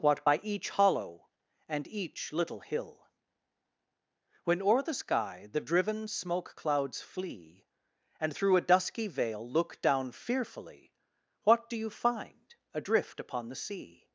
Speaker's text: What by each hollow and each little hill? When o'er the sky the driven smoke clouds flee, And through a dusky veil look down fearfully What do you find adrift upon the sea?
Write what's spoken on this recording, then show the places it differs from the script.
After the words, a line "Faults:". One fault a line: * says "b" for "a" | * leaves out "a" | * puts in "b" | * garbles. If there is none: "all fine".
What by each hollow and each little hill? When o'er the sky the driven smoke clouds flee, And through a dusky veil look down fearfully What do you find adrift upon the sea?
Faults:
all fine